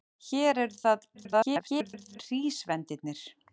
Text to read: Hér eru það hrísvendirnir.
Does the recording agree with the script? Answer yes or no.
no